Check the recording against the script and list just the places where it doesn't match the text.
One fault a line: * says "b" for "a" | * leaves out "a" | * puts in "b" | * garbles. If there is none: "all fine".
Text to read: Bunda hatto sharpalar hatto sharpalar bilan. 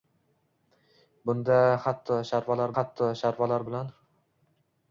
all fine